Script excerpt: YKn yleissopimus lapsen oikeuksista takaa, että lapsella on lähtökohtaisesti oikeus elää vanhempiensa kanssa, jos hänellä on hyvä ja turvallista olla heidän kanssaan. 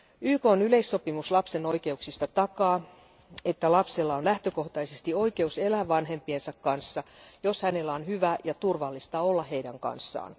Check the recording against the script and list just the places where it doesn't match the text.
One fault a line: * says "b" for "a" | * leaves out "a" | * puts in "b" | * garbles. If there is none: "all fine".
all fine